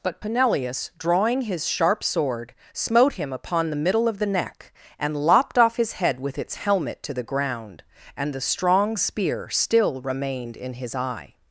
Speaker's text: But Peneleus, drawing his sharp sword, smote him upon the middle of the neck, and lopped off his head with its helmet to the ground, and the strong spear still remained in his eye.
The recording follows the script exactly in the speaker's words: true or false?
true